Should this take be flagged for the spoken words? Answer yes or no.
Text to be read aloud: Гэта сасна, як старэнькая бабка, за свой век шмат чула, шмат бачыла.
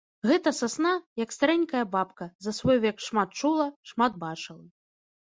no